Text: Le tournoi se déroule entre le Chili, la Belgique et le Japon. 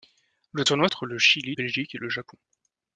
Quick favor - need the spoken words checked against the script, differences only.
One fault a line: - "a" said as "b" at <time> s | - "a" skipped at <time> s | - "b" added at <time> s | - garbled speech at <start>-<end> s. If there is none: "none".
- "se déroule" skipped at 0.9 s
- "la" skipped at 1.6 s